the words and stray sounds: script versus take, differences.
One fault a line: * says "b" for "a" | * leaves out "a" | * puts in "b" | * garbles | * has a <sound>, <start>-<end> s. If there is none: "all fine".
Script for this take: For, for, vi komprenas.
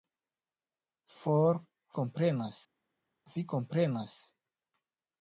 * says "komprenas" for "for"